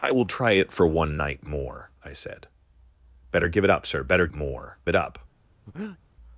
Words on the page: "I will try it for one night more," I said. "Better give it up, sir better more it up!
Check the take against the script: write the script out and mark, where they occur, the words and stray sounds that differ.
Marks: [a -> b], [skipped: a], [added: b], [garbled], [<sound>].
"I will try it for one night more," I said. "Better give it up, sir better more it up! [breath]